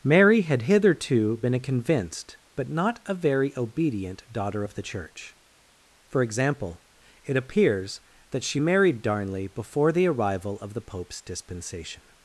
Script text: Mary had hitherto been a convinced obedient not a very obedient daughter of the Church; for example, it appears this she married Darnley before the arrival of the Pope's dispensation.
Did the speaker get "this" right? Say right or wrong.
wrong